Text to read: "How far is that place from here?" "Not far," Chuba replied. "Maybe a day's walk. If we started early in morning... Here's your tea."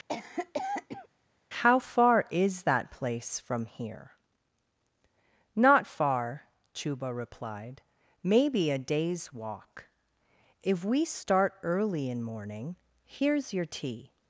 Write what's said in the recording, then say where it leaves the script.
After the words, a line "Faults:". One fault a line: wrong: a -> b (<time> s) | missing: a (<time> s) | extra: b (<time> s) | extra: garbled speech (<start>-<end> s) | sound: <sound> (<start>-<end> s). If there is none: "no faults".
"How far is that place from here?" "Not far," Chuba replied. "Maybe a day's walk. If we start early in morning... Here's your tea."
Faults:
sound: cough (0.1-1.1 s)
wrong: started -> start (11.0 s)